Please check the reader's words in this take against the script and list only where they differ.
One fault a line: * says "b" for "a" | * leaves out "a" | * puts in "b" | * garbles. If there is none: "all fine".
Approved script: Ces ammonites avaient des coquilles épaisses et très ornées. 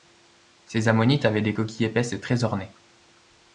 all fine